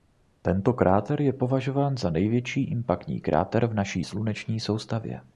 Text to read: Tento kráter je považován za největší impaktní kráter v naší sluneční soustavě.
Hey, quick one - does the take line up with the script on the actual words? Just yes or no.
yes